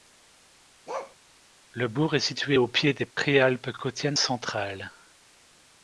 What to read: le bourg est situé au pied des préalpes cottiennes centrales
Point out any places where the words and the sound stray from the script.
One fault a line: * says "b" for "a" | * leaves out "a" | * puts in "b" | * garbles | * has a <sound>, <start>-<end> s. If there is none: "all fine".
* has a bark, 0.9-1.2 s
* has a dropout, 3.1-3.2 s